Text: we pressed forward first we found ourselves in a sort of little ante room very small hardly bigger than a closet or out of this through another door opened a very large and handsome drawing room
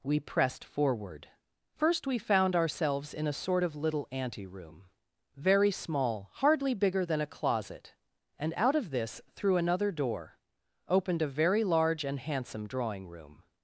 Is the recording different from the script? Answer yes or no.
yes